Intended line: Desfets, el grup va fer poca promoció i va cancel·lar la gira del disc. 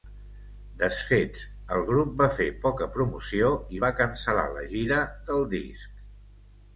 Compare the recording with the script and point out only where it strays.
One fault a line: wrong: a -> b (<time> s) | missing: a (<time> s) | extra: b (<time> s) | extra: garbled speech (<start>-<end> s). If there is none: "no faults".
no faults